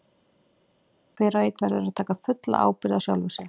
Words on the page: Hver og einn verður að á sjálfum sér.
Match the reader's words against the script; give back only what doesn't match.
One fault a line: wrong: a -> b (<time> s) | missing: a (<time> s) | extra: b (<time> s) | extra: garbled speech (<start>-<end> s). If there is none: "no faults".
extra: taka fulla ábyrgð (2.0 s)